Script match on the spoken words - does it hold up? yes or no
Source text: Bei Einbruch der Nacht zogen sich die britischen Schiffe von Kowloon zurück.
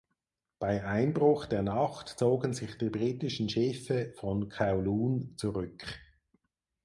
yes